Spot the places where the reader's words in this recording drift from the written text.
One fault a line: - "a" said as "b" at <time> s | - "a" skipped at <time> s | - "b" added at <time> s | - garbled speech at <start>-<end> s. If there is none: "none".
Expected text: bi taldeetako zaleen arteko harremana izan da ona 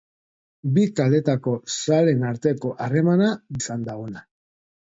none